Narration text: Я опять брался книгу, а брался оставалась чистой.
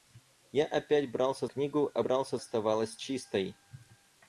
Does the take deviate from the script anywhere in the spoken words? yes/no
no